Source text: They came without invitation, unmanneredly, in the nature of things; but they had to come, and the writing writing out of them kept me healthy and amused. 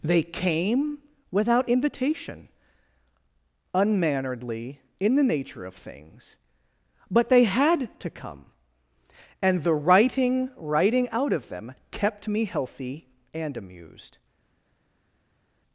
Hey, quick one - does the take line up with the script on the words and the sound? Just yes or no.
yes